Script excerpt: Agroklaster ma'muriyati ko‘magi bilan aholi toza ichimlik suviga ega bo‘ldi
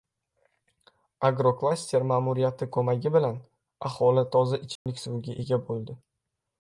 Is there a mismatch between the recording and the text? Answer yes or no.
no